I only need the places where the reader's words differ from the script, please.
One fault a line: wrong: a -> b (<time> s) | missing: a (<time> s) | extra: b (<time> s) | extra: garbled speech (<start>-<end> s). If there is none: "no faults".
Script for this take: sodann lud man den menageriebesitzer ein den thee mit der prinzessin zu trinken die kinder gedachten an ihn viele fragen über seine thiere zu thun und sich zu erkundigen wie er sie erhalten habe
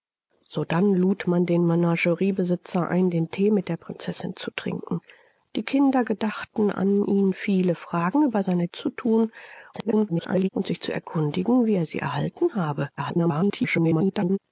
missing: thiere (8.7 s)
extra: garbled speech (9.7-10.5 s)
extra: garbled speech (13.0-14.4 s)